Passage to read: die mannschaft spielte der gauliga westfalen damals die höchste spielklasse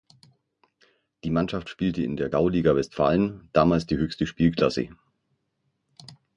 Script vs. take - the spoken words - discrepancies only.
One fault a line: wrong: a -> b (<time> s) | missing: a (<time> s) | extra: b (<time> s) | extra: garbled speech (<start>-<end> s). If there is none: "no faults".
extra: in (2.0 s)